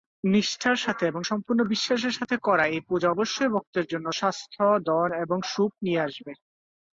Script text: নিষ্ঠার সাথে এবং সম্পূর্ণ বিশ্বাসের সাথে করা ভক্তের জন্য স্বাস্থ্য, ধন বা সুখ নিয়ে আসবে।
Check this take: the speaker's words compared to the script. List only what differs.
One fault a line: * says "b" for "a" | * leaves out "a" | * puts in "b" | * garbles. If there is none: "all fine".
* puts in "এই পূজা অবশ্যই"
* says "এবং" for "বা"